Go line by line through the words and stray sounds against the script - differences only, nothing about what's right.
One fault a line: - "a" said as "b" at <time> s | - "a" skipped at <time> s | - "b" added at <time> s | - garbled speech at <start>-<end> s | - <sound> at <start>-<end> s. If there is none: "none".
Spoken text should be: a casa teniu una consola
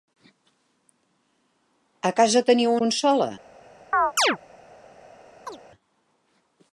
- "una" skipped at 2.7 s
- chirp at 3.9-4.4 s
- chirp at 5.4-5.6 s